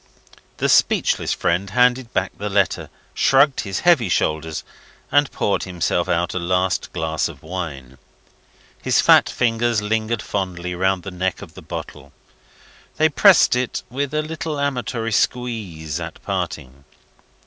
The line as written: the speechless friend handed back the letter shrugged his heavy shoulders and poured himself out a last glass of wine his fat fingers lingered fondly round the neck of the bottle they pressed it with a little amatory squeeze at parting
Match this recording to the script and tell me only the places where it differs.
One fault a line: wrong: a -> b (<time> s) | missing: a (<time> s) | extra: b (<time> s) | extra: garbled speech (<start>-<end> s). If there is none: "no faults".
no faults